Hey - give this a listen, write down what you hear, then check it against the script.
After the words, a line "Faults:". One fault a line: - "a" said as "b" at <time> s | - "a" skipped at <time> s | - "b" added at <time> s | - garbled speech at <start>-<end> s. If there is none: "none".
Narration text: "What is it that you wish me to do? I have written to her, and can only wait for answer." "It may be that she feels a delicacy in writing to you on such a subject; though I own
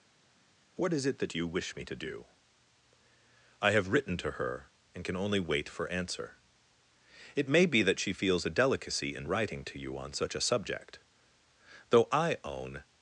"What is it that you wish me to do? I have written to her, and can only wait for answer." "It may be that she feels a delicacy in writing to you on such a subject; though I own
Faults:
none